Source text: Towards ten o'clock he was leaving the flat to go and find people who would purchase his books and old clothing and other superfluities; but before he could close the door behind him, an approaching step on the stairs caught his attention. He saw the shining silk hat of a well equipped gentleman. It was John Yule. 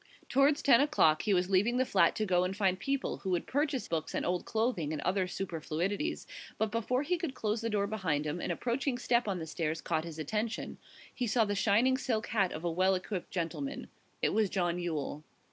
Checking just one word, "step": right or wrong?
right